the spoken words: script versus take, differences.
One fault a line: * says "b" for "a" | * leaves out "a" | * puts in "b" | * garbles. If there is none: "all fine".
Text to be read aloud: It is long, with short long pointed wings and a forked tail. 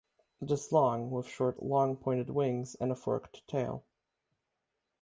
all fine